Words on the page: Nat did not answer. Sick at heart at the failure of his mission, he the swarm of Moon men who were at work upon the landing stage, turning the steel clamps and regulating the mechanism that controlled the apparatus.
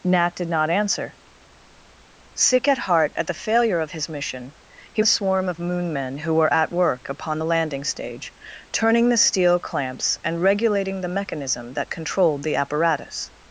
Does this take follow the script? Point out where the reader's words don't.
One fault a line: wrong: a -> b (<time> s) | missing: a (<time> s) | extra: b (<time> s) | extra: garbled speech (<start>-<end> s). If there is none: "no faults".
no faults